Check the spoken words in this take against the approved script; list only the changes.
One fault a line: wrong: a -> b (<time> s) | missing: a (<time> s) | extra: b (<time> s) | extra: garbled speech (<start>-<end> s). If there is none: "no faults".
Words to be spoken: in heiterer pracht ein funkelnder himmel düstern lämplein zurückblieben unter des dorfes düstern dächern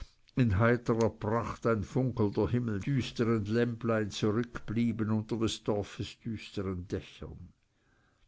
no faults